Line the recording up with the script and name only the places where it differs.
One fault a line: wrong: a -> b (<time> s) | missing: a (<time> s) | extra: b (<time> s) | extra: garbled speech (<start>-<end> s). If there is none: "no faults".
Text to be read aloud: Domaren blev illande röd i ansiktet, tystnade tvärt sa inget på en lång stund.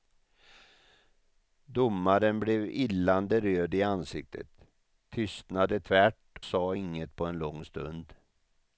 no faults